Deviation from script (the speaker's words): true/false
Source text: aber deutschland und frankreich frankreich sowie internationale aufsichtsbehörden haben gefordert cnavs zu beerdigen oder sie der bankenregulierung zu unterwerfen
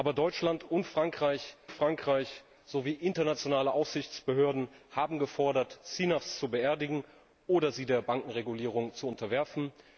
false